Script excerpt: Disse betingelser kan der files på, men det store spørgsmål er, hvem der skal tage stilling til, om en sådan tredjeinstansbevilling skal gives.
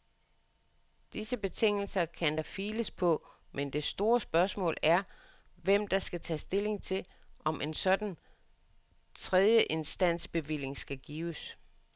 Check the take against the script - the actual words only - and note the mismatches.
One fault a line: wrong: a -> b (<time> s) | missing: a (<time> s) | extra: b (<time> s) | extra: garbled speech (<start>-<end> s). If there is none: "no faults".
no faults